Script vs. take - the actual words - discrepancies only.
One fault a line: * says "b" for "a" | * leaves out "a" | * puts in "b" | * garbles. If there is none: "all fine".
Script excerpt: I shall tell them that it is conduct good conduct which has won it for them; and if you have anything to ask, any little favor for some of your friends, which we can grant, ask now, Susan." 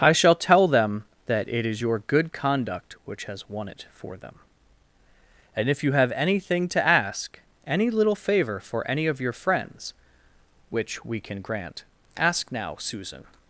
* says "your" for "conduct"
* says "any" for "some"